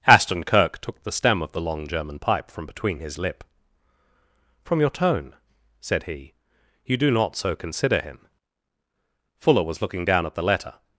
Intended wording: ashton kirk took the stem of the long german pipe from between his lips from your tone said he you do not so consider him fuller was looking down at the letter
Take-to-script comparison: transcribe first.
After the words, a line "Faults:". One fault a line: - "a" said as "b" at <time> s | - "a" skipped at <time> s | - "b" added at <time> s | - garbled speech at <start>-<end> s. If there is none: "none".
ashton kirk took the stem of the long german pipe from between his lip from your tone said he you do not so consider him fuller was looking down at the letter
Faults:
- "lips" said as "lip" at 3.2 s